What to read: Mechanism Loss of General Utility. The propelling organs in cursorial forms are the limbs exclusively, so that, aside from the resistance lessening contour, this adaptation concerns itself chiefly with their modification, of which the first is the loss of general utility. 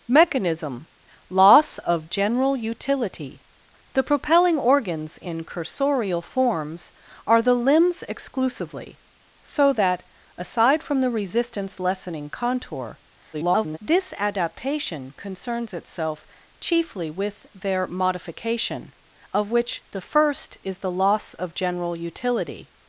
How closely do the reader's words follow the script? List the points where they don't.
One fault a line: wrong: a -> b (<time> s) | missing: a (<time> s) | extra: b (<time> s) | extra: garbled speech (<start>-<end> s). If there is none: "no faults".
extra: garbled speech (13.3-13.8 s)